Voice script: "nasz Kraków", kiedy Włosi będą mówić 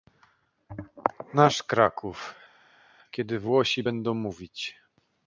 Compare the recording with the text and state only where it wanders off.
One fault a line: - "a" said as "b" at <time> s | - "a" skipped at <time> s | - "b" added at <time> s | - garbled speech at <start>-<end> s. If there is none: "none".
none